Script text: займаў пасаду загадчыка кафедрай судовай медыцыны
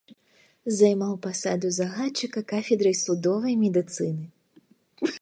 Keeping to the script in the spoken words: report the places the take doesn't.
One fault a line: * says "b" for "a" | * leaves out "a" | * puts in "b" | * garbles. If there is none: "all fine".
all fine